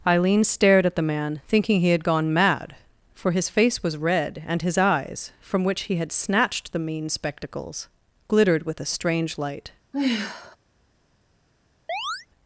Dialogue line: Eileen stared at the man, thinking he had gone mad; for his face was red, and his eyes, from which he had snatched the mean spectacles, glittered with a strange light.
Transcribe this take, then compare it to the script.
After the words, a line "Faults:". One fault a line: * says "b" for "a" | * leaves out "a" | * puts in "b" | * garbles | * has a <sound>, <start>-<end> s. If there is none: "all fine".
Eileen stared at the man, thinking he had gone mad; for his face was red, and his eyes, from which he had snatched the mean spectacles, glittered with a strange light.
Faults:
* has a sigh, 9.9-10.6 s
* has a chirp, 11.9-12.3 s